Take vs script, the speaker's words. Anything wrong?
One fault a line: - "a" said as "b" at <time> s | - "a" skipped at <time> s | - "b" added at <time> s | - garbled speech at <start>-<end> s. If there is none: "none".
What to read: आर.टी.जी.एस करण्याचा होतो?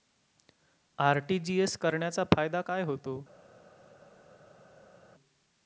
- "फायदा काय" added at 2.4 s